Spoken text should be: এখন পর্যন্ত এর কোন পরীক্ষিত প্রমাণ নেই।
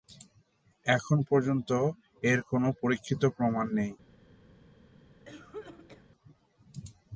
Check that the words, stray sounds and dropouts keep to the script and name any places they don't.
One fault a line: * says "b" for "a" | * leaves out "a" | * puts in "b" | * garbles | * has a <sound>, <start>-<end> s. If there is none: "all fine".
* has a cough, 5.3-6.1 s